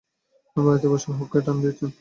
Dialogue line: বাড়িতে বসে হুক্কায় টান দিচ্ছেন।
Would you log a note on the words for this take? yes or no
no